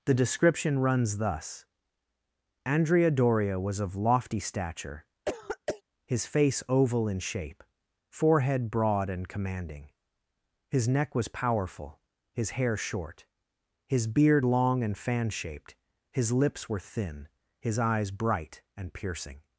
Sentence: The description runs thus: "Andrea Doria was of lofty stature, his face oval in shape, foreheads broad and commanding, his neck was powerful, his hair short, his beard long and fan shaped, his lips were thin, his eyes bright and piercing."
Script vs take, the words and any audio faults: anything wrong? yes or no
yes